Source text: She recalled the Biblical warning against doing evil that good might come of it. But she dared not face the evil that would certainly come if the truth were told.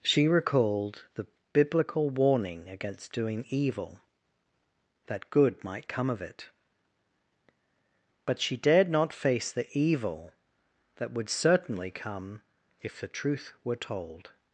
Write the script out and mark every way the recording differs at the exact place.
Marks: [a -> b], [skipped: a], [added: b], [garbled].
She recalled the Biblical warning against doing evil that good might come of it. But she dared not face the evil that would certainly come if the truth were told.